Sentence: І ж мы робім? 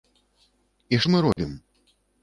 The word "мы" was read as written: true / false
true